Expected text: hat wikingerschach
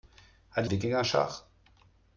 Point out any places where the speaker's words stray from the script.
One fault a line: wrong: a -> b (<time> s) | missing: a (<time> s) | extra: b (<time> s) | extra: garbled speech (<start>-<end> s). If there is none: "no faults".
no faults